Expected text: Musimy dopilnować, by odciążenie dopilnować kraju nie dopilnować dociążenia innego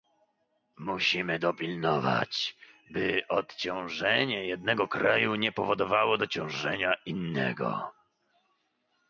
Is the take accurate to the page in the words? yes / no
no